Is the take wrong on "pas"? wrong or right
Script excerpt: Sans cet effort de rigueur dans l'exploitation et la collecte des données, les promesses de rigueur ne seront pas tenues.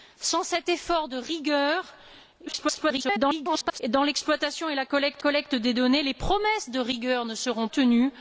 wrong